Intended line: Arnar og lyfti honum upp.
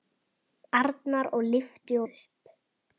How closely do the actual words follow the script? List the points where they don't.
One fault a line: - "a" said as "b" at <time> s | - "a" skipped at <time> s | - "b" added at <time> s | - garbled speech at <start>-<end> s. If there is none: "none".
- "honum" skipped at 2.0 s